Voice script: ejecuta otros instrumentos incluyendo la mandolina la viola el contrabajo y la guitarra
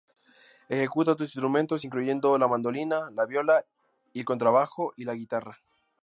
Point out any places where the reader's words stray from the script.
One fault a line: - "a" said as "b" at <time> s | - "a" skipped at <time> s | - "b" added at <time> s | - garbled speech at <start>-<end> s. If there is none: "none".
none